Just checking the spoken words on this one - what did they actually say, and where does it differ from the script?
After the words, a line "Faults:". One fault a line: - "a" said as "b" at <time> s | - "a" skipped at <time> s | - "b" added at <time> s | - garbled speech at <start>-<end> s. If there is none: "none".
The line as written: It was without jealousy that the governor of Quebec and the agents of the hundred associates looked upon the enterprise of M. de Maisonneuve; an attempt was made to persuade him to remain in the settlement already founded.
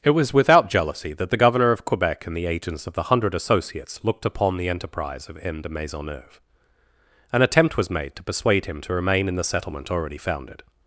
It was without jealousy that the governor of Quebec and the agents of the hundred associates looked upon the enterprise of M. de Maisonneuve; an attempt was made to persuade him to remain in the settlement already founded.
Faults:
none